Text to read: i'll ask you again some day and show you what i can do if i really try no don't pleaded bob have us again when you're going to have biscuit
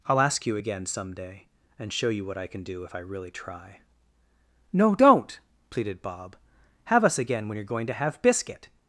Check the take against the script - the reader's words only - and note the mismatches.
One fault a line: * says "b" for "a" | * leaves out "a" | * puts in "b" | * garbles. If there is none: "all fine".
all fine